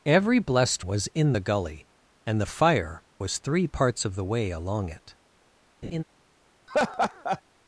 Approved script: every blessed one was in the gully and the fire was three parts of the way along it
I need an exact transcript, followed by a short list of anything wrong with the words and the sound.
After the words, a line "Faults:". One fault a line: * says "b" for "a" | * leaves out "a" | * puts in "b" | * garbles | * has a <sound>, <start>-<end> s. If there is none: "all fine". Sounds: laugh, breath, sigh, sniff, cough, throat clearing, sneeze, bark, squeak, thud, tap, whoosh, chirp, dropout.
every blessed was in the gully and the fire was three parts of the way along it
Faults:
* leaves out "one"
* has a laugh, 5.8-6.0 s
* has a laugh, 6.7-7.4 s